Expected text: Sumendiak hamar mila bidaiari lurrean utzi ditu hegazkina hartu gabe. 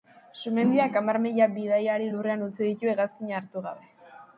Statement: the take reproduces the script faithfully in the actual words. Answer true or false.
true